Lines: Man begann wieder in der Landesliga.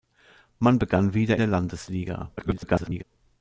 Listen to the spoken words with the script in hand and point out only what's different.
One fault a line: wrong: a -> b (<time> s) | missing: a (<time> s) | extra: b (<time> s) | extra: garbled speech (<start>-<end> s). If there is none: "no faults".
missing: in (1.4 s)
extra: garbled speech (2.4-3.0 s)